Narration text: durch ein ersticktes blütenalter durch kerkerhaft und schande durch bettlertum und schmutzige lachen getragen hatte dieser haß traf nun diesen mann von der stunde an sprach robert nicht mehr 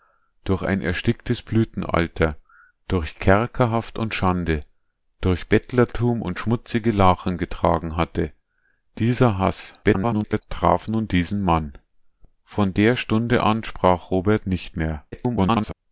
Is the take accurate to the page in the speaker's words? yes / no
no